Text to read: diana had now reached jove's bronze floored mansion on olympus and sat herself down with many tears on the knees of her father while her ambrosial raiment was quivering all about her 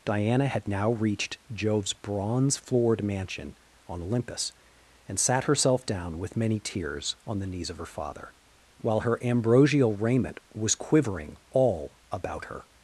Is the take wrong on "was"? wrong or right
right